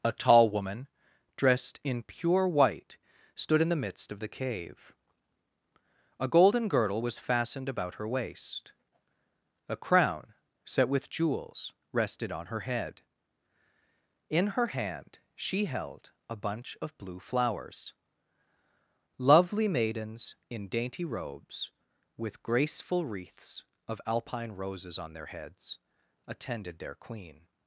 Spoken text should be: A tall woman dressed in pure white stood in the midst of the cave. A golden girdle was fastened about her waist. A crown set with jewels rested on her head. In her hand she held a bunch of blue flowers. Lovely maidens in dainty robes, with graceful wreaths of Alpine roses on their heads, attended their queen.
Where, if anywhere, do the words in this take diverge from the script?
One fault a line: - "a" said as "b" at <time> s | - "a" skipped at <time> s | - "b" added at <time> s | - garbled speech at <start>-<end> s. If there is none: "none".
none